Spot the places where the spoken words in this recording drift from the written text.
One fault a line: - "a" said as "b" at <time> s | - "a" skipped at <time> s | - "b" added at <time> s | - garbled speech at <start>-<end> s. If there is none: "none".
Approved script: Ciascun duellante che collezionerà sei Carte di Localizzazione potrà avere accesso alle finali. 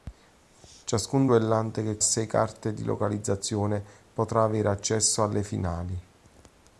- "collezionerà" skipped at 2.0 s